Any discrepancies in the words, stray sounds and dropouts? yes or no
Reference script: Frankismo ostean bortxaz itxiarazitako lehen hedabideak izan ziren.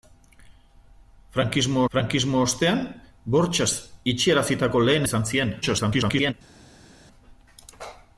yes